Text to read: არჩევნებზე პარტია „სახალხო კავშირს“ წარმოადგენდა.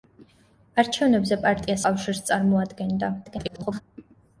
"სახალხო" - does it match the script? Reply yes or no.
no